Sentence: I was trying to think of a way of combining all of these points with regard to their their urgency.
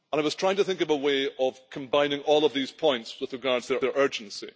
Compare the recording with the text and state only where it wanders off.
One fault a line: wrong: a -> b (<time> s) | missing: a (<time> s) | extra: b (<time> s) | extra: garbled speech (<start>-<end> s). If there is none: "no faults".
no faults